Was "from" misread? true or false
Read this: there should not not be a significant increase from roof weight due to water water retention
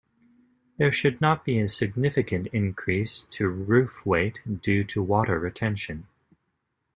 true